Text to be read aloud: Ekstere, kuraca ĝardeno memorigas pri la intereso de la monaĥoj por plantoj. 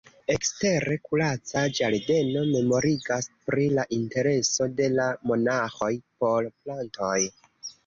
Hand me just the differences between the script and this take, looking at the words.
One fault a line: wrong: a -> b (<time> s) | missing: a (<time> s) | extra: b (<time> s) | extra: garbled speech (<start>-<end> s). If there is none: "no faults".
no faults